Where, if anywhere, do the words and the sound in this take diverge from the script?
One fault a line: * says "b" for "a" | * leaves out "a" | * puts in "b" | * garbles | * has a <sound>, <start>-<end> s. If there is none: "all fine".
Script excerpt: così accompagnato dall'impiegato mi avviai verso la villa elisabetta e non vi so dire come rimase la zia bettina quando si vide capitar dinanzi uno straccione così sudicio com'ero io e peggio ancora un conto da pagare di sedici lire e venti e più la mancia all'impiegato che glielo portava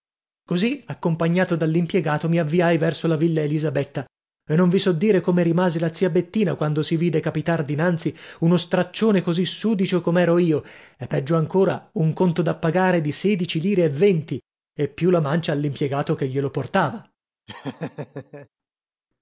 * has a laugh, 17.5-18.5 s